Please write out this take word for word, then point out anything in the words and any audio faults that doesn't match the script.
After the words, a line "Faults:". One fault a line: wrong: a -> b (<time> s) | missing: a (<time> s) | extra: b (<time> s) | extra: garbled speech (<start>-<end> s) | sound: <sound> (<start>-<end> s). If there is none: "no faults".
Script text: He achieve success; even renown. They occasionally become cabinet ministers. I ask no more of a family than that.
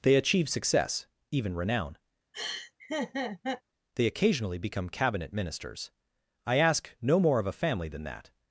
They achieve success; even renown. They occasionally become cabinet ministers. I ask no more of a family than that.
Faults:
wrong: He -> They (0.0 s)
sound: laugh (2.3-3.6 s)